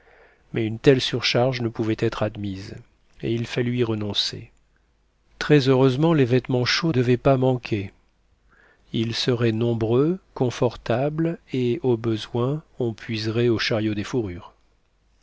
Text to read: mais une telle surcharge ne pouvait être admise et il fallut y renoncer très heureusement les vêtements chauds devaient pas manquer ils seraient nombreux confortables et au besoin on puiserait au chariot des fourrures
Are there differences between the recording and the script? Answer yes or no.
no